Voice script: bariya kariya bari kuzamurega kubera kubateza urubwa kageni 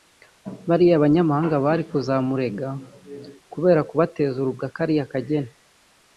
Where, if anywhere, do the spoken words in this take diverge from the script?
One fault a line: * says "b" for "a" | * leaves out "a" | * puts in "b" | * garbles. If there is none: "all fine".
* says "banyamahanga" for "kariya"
* puts in "kariya"